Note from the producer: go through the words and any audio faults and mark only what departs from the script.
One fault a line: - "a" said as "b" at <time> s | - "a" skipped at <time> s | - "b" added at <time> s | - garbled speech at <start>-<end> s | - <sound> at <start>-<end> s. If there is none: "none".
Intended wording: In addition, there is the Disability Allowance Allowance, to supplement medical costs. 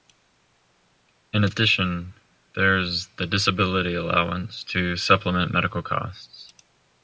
- "Allowance" skipped at 4.6 s